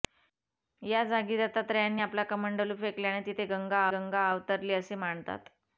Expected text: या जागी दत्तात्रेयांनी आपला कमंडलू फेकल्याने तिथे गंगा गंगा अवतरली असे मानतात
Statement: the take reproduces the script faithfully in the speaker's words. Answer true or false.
true